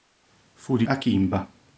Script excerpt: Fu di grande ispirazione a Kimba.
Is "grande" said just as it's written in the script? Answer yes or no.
no